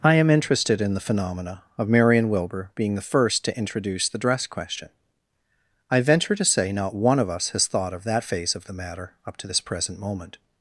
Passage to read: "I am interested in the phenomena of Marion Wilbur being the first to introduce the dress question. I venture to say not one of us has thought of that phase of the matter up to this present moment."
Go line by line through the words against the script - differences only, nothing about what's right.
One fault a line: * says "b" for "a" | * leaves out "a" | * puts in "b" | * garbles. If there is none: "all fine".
all fine